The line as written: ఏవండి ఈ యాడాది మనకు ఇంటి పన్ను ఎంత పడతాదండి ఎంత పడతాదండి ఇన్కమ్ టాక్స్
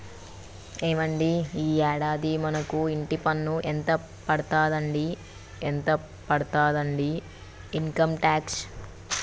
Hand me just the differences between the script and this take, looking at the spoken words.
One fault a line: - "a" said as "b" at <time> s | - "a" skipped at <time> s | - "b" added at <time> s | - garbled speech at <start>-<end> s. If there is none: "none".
none